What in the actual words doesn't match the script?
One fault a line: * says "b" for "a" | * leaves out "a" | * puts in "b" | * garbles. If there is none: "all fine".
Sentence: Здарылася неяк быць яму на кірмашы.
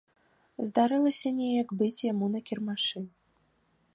all fine